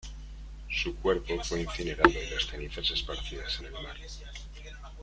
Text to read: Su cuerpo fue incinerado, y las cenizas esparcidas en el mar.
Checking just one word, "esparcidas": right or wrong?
right